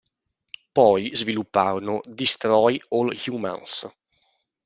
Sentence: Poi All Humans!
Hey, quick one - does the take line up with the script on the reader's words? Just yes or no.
no